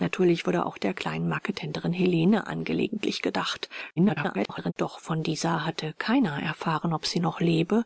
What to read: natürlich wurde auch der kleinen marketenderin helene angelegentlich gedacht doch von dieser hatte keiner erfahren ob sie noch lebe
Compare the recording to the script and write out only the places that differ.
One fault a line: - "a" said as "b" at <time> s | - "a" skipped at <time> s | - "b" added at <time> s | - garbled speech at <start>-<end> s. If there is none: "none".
- garbled speech at 4.0-4.7 s